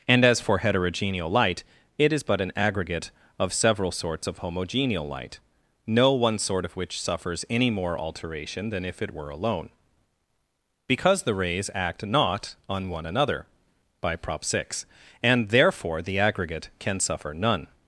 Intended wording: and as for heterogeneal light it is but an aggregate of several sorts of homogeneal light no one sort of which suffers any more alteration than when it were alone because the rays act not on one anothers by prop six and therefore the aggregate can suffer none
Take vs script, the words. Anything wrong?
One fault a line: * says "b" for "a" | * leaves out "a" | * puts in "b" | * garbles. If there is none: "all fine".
* says "if" for "when"
* says "another" for "anothers"